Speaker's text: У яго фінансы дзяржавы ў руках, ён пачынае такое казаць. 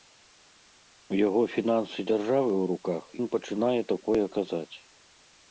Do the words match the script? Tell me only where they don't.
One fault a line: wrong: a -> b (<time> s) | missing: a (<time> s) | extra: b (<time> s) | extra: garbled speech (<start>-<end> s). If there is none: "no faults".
no faults